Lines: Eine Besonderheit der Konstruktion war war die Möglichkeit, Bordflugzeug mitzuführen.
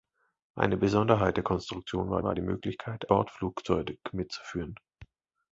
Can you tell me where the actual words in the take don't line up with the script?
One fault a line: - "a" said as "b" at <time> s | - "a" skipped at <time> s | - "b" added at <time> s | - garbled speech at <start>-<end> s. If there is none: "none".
none